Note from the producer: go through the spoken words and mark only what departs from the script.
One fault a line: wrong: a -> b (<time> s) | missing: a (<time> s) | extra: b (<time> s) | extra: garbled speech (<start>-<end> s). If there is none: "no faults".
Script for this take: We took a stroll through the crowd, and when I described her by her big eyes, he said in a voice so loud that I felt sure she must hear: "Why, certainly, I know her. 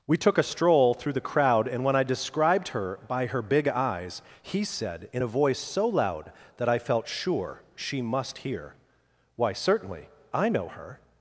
no faults